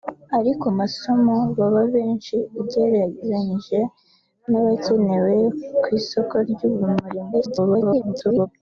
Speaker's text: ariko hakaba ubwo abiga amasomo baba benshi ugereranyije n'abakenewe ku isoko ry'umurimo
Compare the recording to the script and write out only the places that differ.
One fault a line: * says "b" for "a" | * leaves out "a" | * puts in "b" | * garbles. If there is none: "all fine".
* leaves out "hakaba ubwo abiga"
* garbles